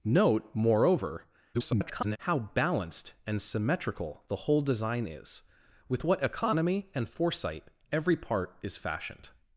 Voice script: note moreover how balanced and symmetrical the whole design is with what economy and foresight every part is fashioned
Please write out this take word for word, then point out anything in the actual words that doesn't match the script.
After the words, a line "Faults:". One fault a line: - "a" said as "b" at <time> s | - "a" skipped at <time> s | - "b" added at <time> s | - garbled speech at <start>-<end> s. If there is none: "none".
note moreover [garbled] how balanced and symmetrical the whole design is with what economy and foresight every part is fashioned
Faults:
- garbled speech at 1.5-2.2 s